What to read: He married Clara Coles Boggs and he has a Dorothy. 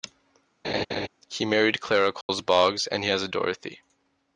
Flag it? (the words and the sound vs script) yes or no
yes